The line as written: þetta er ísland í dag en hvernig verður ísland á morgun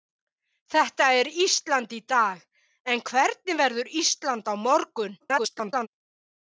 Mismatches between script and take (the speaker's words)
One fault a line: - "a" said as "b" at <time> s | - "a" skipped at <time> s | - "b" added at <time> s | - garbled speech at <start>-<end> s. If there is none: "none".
- garbled speech at 5.2-5.9 s